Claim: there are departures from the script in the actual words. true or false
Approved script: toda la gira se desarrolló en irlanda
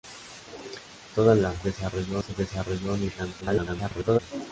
true